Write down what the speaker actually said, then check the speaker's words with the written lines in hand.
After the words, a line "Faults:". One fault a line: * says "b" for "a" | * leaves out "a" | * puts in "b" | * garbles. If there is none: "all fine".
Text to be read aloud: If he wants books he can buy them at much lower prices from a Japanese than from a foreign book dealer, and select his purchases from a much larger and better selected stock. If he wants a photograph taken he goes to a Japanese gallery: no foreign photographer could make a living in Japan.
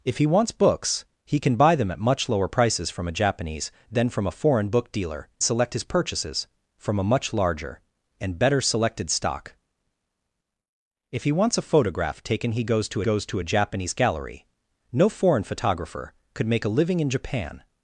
If he wants books he can buy them at much lower prices from a Japanese than from a foreign book dealer, select his purchases from a much larger and better selected stock. If he wants a photograph taken he goes to goes to a Japanese gallery: no foreign photographer could make a living in Japan.
Faults:
* leaves out "and"
* puts in "goes to"